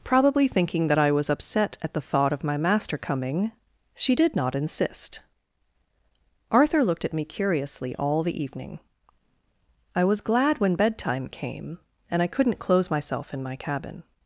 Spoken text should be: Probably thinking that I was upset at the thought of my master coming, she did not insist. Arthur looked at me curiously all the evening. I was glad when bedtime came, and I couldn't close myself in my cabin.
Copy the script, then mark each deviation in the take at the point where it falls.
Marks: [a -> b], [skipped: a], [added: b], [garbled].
Probably thinking that I was upset at the thought of my master coming, she did not insist. Arthur looked at me curiously all the evening. I was glad when bedtime came, and I couldn't close myself in my cabin.